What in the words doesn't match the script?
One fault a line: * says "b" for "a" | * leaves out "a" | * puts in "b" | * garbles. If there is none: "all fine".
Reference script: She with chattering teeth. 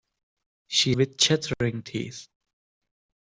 all fine